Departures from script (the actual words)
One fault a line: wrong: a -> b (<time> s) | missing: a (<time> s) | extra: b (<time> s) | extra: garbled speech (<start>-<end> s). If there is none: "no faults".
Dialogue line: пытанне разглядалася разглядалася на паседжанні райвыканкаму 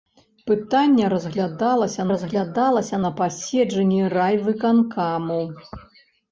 no faults